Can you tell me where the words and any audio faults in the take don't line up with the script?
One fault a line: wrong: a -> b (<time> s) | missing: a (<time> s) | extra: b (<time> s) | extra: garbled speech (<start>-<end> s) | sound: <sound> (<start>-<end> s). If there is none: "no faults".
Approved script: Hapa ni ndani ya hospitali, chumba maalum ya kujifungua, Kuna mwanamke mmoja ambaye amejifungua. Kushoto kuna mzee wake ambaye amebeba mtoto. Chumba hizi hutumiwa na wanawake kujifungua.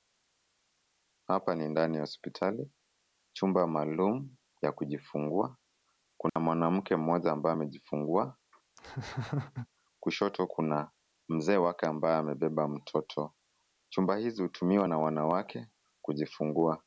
sound: dropout (6.3-6.4 s)
sound: laugh (8.8-9.7 s)